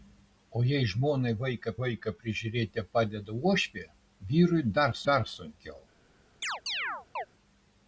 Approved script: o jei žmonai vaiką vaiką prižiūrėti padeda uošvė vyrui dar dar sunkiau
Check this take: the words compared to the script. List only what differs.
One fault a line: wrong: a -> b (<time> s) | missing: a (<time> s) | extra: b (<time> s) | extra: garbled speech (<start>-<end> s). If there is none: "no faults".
no faults